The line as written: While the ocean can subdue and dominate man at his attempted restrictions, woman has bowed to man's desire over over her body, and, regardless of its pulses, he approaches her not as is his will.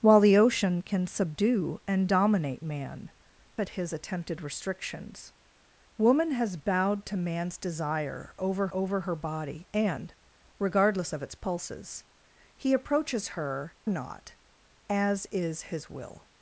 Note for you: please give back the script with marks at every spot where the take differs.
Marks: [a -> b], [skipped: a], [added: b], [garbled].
While the ocean can subdue and dominate man at his attempted restrictions, woman has bowed to man's desire over over her body, and, regardless of its pulses, he approaches her not as is his will.